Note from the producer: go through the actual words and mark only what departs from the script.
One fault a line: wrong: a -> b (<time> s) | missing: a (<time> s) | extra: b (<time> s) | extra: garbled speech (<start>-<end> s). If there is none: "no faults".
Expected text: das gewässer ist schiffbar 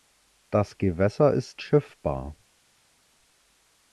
no faults